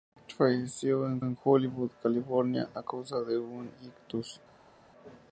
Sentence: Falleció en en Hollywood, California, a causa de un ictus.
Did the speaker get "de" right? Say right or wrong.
right